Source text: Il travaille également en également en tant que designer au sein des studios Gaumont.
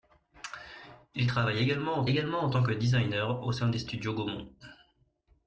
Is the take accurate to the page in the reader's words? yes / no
yes